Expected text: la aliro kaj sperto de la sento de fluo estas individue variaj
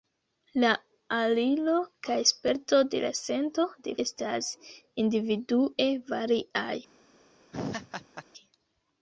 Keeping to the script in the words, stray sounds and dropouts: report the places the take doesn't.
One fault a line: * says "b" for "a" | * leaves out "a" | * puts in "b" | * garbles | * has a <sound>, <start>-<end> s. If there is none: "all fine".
* leaves out "fluo"
* has a laugh, 7.5-8.2 s